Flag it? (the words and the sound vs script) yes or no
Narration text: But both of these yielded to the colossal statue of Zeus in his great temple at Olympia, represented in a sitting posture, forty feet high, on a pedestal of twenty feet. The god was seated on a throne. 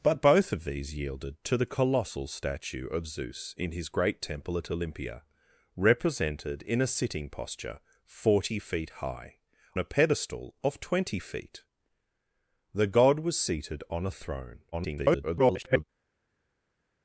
yes